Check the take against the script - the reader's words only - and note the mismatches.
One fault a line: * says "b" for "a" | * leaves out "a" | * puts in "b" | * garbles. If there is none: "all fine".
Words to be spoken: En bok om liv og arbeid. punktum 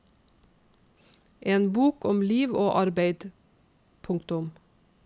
all fine